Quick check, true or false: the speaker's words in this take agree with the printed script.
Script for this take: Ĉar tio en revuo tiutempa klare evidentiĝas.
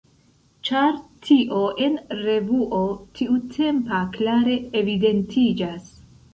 true